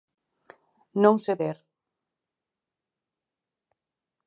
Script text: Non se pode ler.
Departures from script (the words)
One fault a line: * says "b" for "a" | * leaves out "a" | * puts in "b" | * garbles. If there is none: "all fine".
* leaves out "pode"